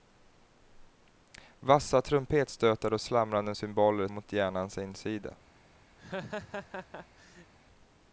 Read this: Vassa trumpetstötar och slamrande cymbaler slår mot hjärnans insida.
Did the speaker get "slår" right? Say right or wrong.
wrong